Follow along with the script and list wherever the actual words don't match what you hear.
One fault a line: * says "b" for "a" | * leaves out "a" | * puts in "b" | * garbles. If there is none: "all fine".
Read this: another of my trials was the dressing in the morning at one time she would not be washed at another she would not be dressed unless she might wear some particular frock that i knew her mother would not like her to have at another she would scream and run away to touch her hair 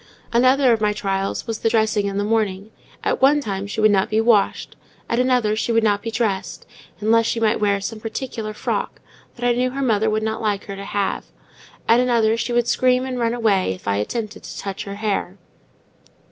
* puts in "if i attempted"